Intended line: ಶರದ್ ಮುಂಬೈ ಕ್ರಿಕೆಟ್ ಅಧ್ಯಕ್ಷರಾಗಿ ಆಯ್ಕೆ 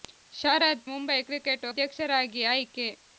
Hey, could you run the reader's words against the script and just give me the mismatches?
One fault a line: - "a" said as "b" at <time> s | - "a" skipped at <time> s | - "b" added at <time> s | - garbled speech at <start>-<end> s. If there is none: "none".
none